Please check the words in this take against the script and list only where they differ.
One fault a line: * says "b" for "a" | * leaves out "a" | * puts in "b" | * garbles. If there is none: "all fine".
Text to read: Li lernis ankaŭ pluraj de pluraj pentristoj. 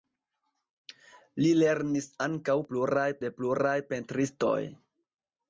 all fine